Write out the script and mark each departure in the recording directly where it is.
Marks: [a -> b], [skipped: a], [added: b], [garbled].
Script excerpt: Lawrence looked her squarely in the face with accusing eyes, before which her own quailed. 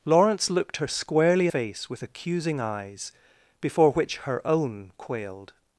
Lawrence looked her squarely [skipped: in the] face with accusing eyes, before which her own quailed.